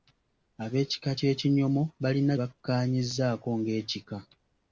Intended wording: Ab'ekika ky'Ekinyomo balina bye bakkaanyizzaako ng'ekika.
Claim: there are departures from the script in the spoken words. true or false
true